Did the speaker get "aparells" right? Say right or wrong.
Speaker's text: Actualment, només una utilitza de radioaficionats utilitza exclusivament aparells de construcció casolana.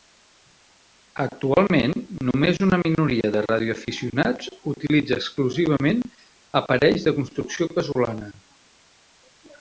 right